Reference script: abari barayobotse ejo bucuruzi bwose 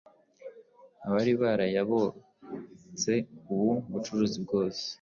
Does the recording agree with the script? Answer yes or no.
no